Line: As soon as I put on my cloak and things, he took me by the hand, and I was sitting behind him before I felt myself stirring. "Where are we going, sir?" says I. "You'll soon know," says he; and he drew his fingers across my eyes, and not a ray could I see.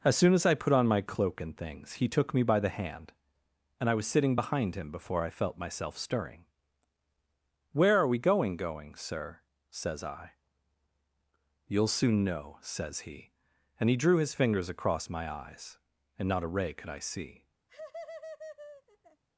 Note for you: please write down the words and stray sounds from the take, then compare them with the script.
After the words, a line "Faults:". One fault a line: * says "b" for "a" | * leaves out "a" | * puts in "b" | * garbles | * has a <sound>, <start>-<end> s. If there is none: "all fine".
As soon as I put on my cloak and things, he took me by the hand, and I was sitting behind him before I felt myself stirring. "Where are we going going, sir?" says I. "You'll soon know," says he; and he drew his fingers across my eyes, and not a ray could I see.
Faults:
* puts in "going"
* has a laugh, 17.7-19.2 s